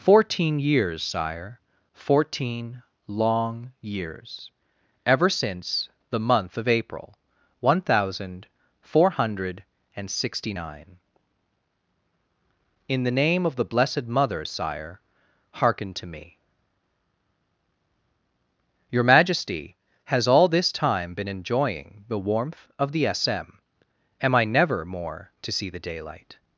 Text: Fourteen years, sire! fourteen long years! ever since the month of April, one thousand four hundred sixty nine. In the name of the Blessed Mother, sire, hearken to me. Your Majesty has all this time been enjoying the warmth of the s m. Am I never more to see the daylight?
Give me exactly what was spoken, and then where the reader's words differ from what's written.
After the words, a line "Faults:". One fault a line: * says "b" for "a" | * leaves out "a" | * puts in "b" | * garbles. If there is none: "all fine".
Fourteen years, sire! fourteen long years! ever since the month of April, one thousand four hundred and sixty nine. In the name of the Blessed Mother, sire, hearken to me. Your Majesty has all this time been enjoying the warmth of the s m. Am I never more to see the daylight?
Faults:
* puts in "and"